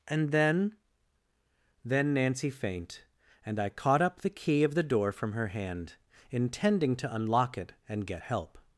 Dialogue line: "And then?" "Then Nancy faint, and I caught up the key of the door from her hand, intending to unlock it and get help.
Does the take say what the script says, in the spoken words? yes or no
yes